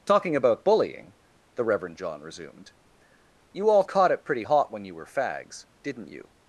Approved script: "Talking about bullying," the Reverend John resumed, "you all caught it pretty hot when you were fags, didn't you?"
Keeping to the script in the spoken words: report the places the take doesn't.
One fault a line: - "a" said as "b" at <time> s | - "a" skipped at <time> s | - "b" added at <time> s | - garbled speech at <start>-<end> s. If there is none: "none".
none